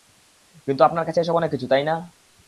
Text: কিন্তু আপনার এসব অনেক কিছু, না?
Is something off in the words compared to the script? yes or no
yes